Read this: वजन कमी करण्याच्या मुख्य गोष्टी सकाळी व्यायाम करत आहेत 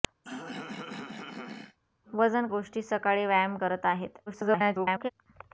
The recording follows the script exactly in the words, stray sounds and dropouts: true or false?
false